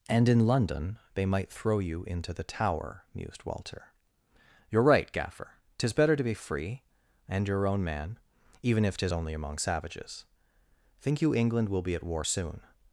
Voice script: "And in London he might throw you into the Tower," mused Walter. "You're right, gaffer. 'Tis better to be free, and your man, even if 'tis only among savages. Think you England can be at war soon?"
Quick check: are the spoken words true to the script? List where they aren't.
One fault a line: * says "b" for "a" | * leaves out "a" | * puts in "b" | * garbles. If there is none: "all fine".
* says "they" for "he"
* puts in "own"
* says "will" for "can"